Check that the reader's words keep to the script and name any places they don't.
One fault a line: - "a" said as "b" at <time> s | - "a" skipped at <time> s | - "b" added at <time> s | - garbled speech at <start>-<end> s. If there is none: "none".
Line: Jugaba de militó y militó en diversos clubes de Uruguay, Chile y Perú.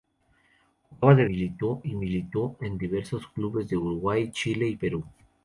none